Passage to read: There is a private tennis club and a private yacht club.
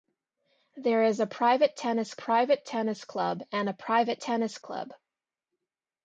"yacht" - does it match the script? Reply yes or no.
no